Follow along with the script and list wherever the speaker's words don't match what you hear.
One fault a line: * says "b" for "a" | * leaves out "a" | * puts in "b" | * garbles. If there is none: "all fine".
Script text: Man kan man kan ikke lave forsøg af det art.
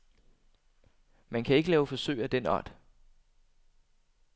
* leaves out "man kan"
* says "den" for "det"